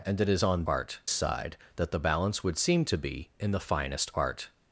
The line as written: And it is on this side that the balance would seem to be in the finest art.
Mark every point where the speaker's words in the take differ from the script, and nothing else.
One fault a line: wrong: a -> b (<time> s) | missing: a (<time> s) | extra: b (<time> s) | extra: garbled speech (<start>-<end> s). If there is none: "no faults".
wrong: this -> art (0.6 s)